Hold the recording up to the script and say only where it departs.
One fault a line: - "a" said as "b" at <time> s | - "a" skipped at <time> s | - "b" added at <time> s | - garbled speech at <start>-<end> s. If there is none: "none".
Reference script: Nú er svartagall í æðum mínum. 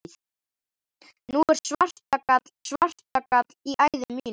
- "svartagall" added at 2.6 s